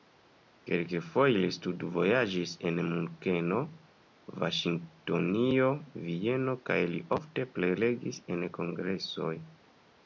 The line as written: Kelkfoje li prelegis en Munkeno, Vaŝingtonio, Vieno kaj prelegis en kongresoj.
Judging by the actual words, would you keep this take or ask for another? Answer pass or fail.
fail